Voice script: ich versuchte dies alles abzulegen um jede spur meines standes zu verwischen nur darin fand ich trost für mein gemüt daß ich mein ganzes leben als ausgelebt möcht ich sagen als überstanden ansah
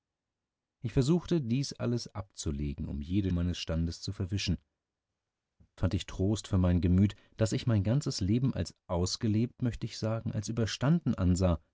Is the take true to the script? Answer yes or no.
no